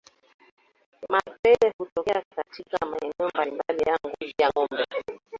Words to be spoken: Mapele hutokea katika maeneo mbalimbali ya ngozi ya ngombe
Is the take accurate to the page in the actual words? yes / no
yes